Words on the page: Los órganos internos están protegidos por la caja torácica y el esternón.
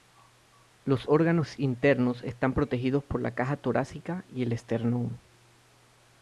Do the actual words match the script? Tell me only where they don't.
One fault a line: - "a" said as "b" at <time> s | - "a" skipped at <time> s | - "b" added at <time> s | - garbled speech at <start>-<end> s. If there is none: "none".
none